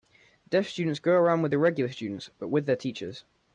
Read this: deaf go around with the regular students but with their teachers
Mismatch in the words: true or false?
true